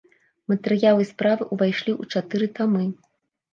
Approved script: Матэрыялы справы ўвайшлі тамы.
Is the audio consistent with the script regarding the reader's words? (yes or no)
no